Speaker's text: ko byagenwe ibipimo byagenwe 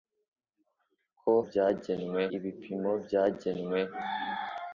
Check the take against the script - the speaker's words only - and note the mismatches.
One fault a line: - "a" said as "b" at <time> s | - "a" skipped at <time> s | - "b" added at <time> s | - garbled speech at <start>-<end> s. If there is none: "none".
none